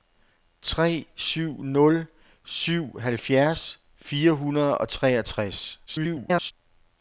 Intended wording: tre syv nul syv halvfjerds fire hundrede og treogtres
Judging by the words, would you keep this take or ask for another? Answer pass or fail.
fail